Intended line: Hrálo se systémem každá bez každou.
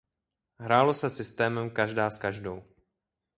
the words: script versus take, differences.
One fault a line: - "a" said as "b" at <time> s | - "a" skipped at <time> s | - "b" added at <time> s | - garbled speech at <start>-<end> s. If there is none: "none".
- "bez" said as "s" at 2.1 s